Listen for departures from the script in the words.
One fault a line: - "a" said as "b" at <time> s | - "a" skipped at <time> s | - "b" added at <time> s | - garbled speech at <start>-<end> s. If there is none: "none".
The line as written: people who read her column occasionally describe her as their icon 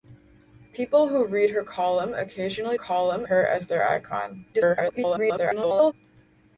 - "describe" said as "column" at 2.7 s
- garbled speech at 4.5-5.9 s